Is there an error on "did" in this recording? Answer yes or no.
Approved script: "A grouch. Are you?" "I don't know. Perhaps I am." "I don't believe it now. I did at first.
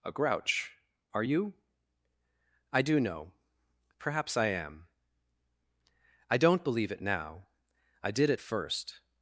no